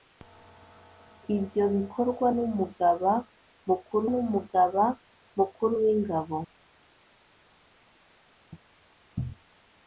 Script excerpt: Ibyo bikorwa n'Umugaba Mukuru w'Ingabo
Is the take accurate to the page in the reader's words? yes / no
no